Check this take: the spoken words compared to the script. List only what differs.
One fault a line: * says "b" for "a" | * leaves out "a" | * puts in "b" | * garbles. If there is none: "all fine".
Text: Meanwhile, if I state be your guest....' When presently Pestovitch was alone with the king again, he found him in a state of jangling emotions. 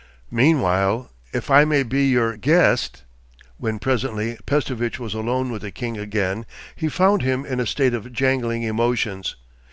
* says "may" for "state"